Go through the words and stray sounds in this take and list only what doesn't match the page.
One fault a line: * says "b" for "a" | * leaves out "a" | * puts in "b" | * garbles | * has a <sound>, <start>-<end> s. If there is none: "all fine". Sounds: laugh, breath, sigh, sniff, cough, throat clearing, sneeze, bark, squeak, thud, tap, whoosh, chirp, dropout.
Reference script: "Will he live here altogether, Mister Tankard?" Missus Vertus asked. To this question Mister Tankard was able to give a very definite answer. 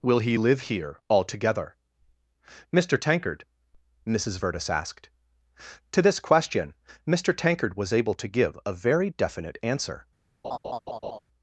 * has a laugh, 10.4-11.2 s